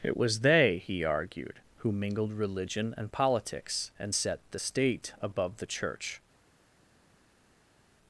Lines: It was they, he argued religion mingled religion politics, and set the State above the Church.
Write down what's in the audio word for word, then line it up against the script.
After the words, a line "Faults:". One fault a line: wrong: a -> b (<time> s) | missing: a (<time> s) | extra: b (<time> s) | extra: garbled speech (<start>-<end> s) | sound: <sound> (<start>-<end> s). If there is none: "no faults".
It was they, he argued who mingled religion and politics, and set the State above the Church.
Faults:
wrong: religion -> who (1.8 s)
extra: and (3.0 s)